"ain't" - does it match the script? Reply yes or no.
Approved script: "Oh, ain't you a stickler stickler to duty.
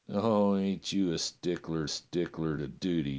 yes